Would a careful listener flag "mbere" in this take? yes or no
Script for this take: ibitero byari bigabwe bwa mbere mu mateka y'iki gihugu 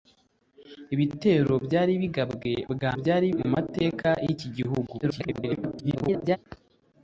yes